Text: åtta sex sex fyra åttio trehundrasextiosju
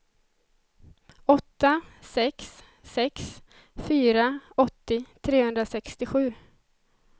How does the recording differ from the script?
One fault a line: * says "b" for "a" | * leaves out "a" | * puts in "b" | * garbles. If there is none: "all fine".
all fine